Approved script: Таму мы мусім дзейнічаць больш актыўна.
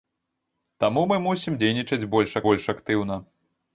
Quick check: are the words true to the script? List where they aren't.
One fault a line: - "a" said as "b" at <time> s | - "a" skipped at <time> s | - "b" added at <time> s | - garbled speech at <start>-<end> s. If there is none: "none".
- "больш" added at 2.5 s